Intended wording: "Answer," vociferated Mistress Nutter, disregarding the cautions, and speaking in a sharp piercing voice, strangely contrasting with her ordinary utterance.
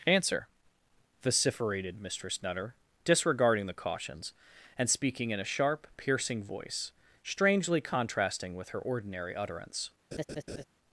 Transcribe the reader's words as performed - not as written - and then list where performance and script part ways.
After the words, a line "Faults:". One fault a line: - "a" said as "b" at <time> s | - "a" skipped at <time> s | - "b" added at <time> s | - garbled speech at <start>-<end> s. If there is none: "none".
"Answer," vociferated Mistress Nutter, disregarding the cautions, and speaking in a sharp piercing voice, strangely contrasting with her ordinary utterance.
Faults:
none